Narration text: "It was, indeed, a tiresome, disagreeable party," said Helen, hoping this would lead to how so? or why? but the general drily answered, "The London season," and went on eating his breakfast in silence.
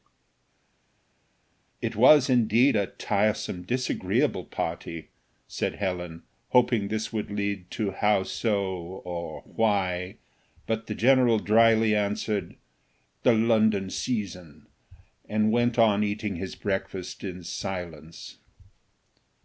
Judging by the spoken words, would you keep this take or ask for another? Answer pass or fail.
pass